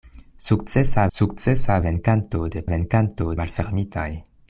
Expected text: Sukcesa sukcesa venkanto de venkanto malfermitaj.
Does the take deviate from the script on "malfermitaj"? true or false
false